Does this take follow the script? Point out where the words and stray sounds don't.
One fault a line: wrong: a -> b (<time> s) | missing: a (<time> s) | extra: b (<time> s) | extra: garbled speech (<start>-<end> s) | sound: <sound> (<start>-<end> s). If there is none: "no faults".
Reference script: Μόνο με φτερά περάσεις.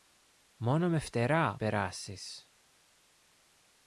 no faults